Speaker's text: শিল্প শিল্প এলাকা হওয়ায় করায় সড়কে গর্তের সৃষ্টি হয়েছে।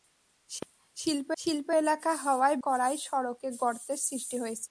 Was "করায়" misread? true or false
false